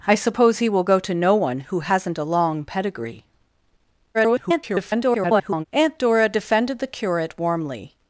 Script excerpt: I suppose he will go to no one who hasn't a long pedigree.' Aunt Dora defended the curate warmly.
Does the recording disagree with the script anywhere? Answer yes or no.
yes